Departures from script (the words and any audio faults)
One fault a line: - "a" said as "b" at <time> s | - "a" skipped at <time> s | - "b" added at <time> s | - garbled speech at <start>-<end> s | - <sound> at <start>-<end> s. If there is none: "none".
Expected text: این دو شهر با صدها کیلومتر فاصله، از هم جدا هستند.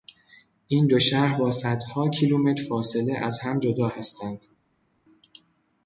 none